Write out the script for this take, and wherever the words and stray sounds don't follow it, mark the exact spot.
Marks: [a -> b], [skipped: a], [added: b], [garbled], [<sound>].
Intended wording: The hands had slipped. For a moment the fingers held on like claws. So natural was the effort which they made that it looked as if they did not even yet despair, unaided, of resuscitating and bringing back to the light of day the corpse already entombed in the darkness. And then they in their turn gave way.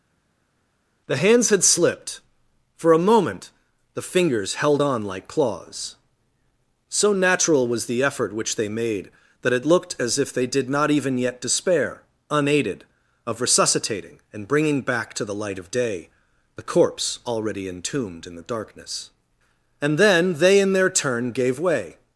The hands had slipped. For a moment the fingers held on like claws. So natural was the effort which they made that it looked as if they did not even yet despair, unaided, of resuscitating and bringing back to the light of day the corpse already entombed in the darkness. And then they in their turn gave way.